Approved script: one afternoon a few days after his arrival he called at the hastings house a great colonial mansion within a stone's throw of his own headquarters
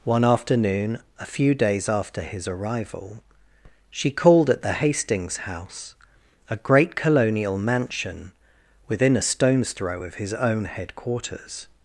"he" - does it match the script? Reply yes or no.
no